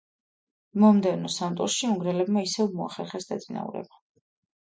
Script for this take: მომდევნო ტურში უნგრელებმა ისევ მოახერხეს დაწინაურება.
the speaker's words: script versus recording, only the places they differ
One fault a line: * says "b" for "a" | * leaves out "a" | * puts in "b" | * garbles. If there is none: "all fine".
* puts in "სამ"